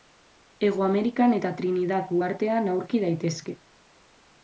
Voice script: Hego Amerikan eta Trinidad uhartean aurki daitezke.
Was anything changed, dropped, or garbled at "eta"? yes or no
no